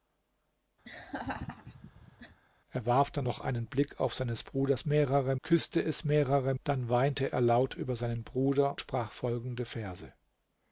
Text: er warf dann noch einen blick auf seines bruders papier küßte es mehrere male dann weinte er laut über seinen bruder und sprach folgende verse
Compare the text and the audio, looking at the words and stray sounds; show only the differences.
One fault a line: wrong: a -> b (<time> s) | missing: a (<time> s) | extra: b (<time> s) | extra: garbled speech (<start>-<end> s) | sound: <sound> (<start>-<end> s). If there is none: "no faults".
sound: laugh (0.8-2.4 s)
wrong: papier -> mehrere (4.9 s)
missing: male (6.5 s)
missing: und (8.8 s)